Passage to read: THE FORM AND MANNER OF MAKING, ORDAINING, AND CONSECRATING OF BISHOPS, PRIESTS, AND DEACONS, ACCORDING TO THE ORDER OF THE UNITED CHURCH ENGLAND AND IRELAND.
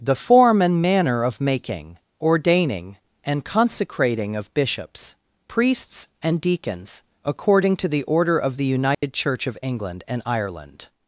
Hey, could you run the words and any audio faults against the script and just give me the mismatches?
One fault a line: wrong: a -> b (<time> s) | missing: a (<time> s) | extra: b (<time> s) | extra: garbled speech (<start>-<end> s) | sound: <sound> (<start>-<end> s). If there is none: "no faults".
sound: dropout (8.9-9.0 s)
extra: OF (9.5 s)